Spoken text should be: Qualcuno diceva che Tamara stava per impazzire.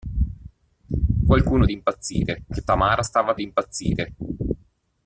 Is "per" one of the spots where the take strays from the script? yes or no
yes